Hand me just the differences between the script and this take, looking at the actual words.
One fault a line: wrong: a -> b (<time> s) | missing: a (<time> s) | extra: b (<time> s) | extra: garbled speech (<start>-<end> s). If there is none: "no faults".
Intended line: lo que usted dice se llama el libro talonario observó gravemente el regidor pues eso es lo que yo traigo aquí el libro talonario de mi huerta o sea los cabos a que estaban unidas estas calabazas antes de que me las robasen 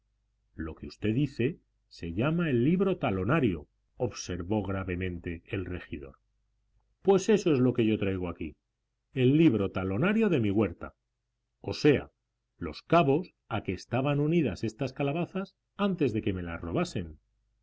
no faults